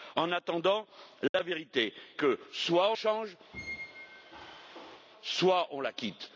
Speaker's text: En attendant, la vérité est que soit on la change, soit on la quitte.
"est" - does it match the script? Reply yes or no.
no